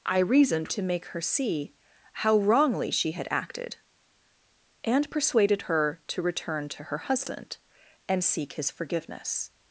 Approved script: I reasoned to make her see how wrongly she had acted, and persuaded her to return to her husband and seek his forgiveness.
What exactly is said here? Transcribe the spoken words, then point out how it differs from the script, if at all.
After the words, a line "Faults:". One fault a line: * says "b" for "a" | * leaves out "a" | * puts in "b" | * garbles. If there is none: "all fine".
I reasoned to make her see how wrongly she had acted, and persuaded her to return to her husband and seek his forgiveness.
Faults:
all fine